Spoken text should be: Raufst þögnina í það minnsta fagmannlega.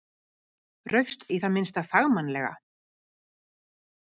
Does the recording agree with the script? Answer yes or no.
no